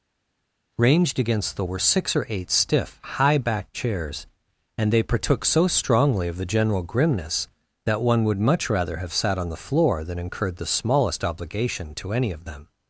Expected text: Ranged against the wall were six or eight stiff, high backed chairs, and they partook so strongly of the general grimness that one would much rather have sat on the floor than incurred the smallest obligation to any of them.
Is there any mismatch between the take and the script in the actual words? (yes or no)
yes